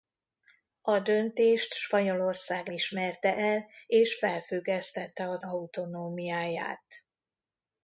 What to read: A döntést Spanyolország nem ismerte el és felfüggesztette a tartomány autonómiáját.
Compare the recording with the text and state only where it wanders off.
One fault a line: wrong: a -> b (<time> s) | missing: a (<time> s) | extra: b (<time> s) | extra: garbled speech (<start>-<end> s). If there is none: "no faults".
missing: nem (2.7 s)
missing: tartomány (5.4 s)